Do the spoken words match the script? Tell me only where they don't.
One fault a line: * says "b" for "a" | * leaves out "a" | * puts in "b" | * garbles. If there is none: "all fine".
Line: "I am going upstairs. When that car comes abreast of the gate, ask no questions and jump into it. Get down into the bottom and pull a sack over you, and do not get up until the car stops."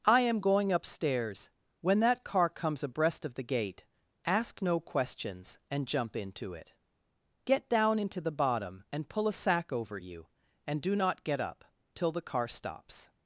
* says "till" for "until"